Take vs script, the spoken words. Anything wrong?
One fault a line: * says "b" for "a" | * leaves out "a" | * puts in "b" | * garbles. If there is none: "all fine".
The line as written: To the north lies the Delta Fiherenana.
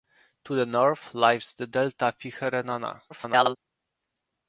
* garbles